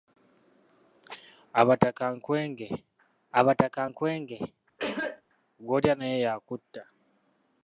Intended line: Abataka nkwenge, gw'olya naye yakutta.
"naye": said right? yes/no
yes